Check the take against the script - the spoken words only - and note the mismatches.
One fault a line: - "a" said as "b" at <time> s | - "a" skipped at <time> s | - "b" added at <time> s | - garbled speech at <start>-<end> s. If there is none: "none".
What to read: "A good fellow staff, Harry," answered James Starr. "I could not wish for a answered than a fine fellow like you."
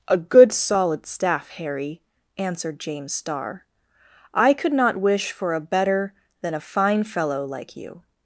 - "fellow" said as "solid" at 0.5 s
- "answered" said as "better" at 5.6 s